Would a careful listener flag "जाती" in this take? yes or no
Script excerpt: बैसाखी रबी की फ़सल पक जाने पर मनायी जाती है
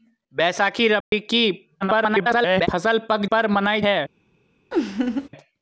yes